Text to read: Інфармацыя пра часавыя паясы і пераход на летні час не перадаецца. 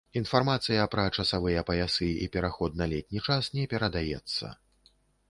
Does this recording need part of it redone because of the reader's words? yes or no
no